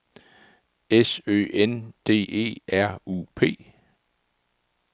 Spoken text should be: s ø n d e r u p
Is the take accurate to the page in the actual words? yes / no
yes